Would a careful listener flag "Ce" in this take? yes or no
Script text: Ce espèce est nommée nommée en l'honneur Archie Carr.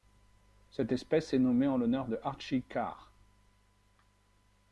yes